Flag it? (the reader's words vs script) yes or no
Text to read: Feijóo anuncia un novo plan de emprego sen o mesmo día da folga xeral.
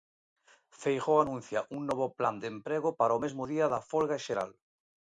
yes